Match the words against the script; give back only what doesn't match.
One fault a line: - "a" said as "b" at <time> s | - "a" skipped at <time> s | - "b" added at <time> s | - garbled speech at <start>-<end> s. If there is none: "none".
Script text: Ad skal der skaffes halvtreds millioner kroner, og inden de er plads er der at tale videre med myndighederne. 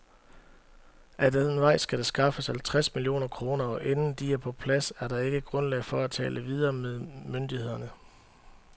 - "den vej" added at 1.3 s
- "på" added at 4.4 s
- "ikke grundlag for" added at 5.2 s